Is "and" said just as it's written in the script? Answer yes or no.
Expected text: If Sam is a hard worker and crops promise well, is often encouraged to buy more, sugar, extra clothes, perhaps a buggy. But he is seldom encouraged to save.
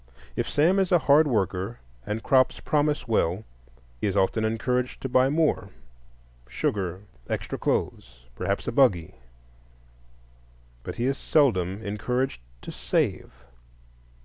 yes